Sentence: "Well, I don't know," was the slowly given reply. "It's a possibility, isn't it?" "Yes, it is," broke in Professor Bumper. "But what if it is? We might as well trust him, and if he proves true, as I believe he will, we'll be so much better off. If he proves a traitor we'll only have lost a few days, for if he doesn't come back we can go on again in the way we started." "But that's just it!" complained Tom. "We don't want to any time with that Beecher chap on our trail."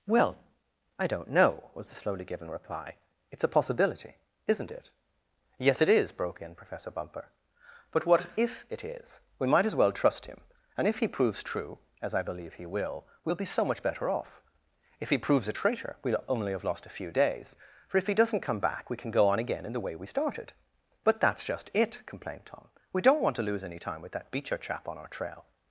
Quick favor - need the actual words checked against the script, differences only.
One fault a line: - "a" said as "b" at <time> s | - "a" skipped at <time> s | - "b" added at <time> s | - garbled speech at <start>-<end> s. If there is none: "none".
- "lose" added at 23.5 s